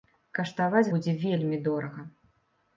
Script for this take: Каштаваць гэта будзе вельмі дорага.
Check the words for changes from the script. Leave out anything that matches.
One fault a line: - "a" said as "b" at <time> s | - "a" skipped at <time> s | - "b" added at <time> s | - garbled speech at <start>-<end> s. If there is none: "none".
- "гэта" skipped at 0.9 s